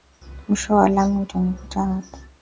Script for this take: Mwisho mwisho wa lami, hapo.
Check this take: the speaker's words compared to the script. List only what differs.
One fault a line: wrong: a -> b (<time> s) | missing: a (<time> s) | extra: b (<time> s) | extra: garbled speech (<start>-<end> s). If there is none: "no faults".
missing: mwisho (0.8 s)
extra: utanikuta (1.2 s)